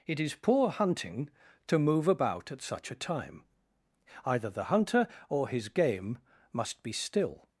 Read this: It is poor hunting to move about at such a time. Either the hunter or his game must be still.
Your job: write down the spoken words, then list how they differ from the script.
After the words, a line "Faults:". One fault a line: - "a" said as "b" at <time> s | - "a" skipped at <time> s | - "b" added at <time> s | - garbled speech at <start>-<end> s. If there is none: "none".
It is poor hunting to move about at such a time. Either the hunter or his game must be still.
Faults:
none